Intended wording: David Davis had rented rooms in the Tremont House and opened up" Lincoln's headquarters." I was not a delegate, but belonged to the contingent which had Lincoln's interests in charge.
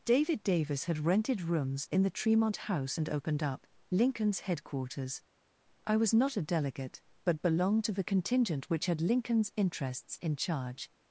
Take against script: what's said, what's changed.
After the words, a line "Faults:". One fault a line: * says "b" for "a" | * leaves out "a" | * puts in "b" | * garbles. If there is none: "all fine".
David Davis had rented rooms in the Tremont House and opened up" Lincoln's headquarters." I was not a delegate, but belonged to the contingent which had Lincoln's interests in charge.
Faults:
all fine